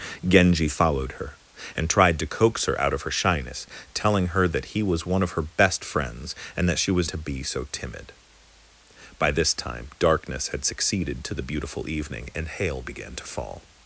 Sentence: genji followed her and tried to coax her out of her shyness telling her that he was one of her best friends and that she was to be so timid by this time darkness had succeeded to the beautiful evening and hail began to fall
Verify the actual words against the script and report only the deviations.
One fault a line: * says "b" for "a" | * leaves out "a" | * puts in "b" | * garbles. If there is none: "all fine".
all fine